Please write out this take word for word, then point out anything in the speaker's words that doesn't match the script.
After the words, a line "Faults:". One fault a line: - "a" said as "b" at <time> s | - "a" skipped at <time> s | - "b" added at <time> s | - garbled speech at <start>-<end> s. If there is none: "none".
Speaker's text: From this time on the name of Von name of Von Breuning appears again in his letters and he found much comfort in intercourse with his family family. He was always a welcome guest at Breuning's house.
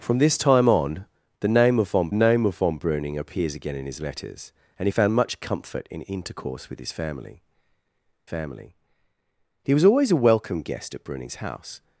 From this time on the name of Von name of Von Breuning appears again in his letters and he found much comfort in intercourse with his family family. He was always a welcome guest at Breuning's house.
Faults:
none